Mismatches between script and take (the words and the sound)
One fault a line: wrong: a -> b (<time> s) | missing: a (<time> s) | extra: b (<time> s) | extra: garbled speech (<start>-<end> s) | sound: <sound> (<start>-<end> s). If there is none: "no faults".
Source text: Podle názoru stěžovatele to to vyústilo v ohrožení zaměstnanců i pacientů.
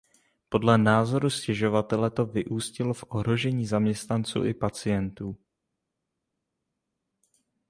missing: to (2.2 s)